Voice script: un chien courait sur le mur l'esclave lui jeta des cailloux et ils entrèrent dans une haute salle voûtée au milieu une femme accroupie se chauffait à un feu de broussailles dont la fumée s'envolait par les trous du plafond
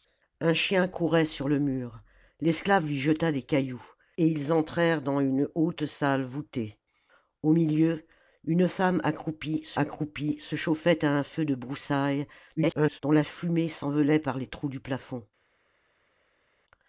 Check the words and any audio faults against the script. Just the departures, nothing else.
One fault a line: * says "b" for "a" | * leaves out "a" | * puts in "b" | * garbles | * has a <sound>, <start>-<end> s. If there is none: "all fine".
* puts in "accroupie se"
* garbles